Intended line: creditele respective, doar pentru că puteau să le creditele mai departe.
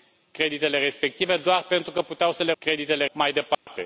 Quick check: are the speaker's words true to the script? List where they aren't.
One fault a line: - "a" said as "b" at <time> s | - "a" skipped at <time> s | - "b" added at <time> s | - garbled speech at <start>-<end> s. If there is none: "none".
none